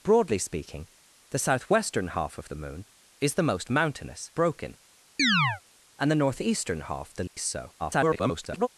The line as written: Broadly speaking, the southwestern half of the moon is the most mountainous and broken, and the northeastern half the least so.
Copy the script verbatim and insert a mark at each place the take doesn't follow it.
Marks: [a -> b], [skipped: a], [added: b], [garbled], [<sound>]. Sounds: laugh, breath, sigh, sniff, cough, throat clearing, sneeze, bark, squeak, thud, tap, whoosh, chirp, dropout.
Broadly speaking, the southwestern half of the moon is the most mountainous [skipped: and] broken, [chirp] and the northeastern half the least [dropout] so. [garbled]